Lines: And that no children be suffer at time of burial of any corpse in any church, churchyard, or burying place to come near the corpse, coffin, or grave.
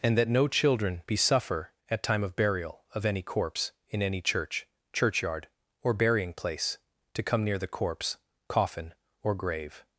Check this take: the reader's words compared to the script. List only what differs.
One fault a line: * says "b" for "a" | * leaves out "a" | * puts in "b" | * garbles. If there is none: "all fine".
all fine